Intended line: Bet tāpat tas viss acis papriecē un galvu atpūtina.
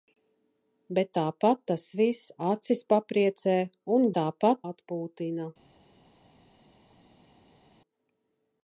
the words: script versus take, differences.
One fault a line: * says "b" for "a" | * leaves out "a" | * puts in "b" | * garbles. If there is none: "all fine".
* says "tāpat" for "galvu"